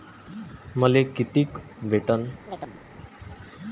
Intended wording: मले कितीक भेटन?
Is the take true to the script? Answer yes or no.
yes